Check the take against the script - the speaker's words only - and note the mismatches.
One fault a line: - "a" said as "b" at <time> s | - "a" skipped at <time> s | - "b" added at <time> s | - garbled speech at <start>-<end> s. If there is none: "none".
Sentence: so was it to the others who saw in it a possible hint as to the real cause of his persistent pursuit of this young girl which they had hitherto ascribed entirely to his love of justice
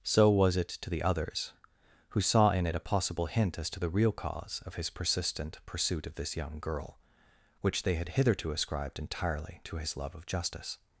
none